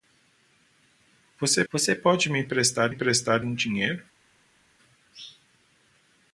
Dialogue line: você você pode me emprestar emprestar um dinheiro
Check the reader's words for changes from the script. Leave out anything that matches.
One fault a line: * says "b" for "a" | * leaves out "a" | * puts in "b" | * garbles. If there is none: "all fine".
all fine